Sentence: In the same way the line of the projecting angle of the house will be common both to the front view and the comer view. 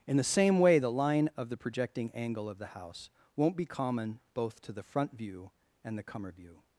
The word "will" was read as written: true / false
false